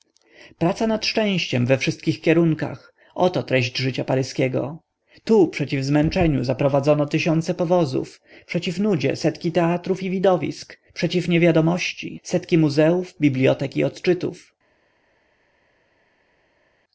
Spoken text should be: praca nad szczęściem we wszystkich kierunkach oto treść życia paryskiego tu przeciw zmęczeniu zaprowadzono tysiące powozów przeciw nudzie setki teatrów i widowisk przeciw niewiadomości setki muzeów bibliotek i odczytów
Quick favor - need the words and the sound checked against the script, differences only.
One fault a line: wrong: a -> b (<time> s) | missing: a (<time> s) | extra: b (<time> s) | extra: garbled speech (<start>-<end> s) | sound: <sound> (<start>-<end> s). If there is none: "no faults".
no faults